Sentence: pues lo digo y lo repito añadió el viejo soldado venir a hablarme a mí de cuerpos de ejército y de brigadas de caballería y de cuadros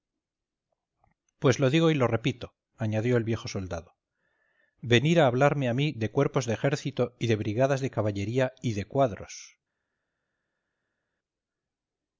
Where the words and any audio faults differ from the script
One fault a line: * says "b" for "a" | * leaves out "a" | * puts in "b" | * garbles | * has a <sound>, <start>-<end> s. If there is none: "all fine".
all fine